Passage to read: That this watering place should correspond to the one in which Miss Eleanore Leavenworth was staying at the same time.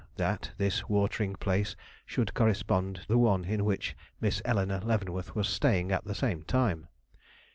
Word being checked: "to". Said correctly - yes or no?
no